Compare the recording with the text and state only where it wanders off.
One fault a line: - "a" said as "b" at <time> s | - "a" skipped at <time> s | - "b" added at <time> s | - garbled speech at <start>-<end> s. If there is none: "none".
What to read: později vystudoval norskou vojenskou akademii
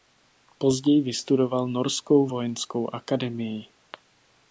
none